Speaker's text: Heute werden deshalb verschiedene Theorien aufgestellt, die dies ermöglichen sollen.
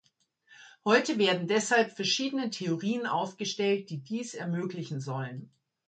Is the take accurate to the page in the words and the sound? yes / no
yes